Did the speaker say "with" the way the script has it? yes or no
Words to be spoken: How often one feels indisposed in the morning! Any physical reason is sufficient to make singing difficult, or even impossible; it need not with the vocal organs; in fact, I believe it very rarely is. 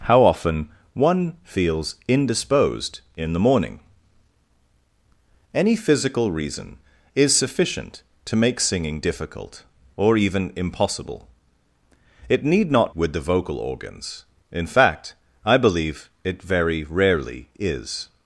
yes